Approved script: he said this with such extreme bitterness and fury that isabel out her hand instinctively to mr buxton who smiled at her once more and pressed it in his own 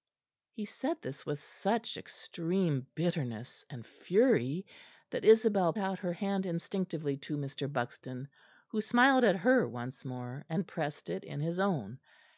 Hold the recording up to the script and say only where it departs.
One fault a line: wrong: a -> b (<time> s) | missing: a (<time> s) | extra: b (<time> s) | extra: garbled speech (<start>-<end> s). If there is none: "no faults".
no faults